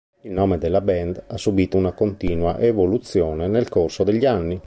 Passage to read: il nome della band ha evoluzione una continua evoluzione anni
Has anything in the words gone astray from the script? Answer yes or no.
yes